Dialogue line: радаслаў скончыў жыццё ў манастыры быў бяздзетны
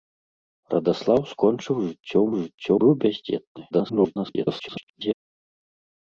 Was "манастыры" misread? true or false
true